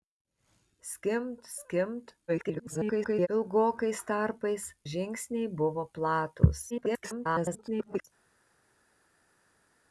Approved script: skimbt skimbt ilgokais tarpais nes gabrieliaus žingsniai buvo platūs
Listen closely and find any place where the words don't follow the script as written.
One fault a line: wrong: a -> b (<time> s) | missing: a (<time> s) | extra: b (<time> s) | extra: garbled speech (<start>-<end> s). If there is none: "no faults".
extra: garbled speech (2.3-3.3 s)
missing: nes gabrieliaus (4.7 s)
extra: garbled speech (6.7-8.0 s)